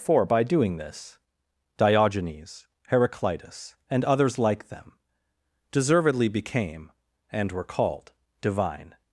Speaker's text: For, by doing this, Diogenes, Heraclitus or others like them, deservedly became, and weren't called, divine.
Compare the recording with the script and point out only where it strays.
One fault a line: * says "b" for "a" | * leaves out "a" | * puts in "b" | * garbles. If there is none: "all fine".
* says "and" for "or"
* says "were" for "weren't"